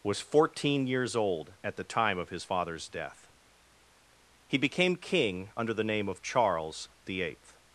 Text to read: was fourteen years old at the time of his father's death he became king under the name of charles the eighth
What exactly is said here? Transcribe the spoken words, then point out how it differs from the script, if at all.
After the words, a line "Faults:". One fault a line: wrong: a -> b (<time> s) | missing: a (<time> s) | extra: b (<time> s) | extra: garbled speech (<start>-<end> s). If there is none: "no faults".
was fourteen years old at the time of his father's death he became king under the name of charles the eighth
Faults:
no faults